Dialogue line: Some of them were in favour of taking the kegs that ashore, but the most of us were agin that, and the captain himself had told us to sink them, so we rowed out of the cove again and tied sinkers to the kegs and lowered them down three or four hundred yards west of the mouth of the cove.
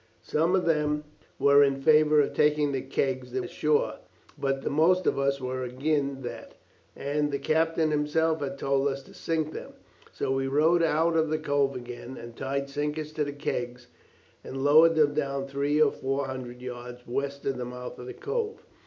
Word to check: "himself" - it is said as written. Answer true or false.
true